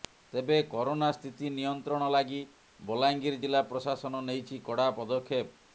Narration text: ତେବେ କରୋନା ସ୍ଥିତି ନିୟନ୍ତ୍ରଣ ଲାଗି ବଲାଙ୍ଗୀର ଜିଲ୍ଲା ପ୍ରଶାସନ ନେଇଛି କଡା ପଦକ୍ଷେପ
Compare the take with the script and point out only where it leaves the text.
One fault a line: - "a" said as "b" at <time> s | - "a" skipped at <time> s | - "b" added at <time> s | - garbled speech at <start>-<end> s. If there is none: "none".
none